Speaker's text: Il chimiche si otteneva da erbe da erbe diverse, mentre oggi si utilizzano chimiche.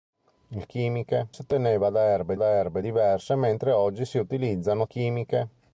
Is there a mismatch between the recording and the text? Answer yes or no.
no